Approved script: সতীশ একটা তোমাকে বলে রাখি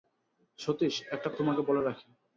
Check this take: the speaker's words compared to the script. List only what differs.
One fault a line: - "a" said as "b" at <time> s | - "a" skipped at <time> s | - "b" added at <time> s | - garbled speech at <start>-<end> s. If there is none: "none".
none